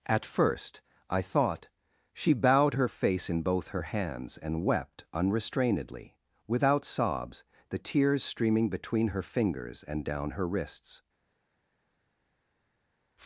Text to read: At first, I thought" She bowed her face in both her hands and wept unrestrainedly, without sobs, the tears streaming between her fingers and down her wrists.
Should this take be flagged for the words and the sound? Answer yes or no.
no